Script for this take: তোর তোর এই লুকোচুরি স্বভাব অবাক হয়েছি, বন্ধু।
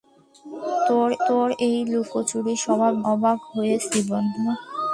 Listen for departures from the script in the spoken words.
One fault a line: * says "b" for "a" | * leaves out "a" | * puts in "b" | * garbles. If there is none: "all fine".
all fine